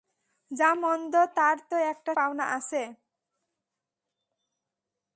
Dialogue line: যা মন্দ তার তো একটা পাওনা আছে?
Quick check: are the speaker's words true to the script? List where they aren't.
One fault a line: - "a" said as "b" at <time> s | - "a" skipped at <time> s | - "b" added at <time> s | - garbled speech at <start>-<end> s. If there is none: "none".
none